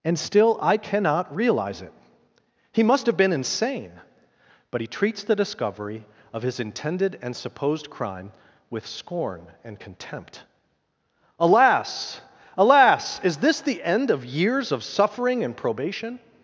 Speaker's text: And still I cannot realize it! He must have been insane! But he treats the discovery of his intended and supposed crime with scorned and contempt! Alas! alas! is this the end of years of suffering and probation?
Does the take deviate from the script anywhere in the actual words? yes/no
yes